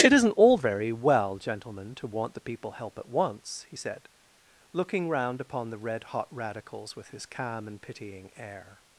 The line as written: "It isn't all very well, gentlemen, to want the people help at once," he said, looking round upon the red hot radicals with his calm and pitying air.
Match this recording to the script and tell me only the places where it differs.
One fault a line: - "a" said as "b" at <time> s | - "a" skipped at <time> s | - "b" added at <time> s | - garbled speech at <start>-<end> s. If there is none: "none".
none